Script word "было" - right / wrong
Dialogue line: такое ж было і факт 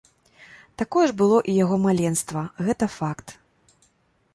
right